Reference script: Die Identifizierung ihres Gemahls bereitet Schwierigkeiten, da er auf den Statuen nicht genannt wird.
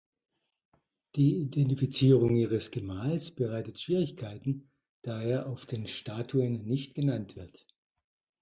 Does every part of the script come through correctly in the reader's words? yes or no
yes